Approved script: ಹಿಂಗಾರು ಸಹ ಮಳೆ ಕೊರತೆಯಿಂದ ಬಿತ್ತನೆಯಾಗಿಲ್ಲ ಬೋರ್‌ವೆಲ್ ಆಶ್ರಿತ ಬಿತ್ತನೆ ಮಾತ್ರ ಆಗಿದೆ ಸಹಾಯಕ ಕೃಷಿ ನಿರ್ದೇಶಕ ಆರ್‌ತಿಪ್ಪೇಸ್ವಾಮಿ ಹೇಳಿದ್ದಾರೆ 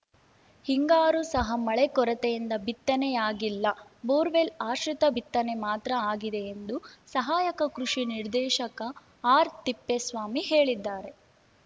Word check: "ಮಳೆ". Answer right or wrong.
right